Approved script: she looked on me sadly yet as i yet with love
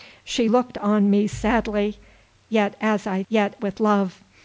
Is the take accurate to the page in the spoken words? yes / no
yes